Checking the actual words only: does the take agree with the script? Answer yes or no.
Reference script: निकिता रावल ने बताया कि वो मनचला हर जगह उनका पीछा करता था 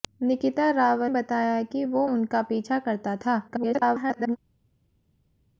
no